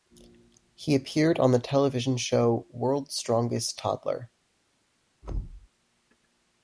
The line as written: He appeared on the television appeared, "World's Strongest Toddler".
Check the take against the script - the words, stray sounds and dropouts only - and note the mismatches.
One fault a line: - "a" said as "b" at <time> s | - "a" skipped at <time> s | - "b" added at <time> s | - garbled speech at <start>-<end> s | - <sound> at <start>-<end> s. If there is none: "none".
- "appeared" said as "show" at 2.2 s
- thud at 5.2-5.7 s